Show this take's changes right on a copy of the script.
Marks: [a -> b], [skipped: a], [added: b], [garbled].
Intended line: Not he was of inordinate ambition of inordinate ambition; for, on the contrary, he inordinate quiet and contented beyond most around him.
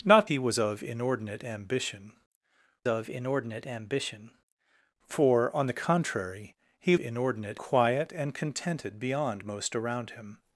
Not he was of inordinate ambition of inordinate ambition; for, on the contrary, he inordinate quiet and contented beyond most around him.